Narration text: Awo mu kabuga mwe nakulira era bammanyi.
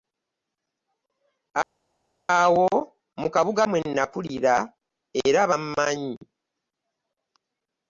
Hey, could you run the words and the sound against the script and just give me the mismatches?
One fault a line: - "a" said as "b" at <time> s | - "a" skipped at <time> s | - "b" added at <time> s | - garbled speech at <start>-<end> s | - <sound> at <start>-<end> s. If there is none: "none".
none